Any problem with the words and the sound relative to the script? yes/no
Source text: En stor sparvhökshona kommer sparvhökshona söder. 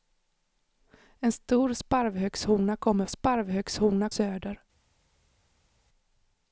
no